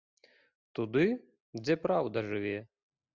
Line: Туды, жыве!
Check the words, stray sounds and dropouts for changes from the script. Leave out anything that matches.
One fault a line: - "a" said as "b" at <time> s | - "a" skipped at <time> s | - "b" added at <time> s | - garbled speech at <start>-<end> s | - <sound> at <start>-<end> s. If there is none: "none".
- "дзе праўда" added at 1.6 s